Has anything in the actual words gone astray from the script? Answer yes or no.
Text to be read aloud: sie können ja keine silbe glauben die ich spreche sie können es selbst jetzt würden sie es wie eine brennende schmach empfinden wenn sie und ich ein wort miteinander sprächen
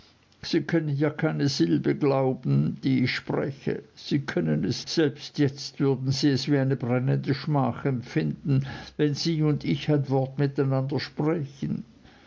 no